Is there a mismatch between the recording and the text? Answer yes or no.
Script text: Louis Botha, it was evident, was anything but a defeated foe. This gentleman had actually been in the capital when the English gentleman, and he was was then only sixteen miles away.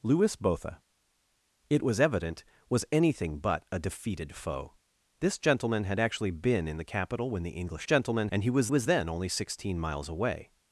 no